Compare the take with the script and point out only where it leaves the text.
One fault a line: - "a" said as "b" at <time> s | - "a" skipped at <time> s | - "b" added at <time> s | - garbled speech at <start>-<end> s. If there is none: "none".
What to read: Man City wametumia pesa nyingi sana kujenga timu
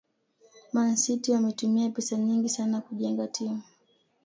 none